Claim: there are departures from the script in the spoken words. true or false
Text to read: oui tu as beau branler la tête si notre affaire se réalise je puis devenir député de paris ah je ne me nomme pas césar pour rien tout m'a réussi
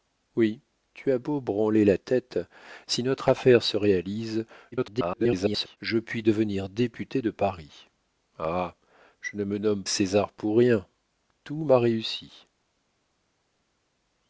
true